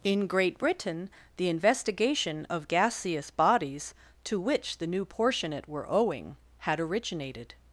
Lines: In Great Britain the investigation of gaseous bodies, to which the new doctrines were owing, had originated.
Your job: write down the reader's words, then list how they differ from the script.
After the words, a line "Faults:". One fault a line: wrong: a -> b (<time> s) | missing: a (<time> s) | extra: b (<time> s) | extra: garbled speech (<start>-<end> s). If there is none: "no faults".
In Great Britain the investigation of gaseous bodies, to which the new portionate were owing, had originated.
Faults:
wrong: doctrines -> portionate (5.0 s)